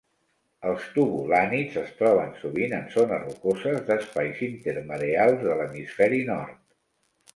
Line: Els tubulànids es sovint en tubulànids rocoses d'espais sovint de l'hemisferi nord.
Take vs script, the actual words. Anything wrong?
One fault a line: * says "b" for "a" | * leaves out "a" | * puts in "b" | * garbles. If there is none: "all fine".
* puts in "troben"
* says "zones" for "tubulànids"
* says "intermareals" for "sovint"